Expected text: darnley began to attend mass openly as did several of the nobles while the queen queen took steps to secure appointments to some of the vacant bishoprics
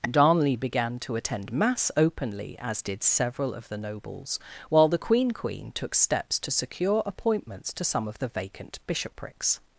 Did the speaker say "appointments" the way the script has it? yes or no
yes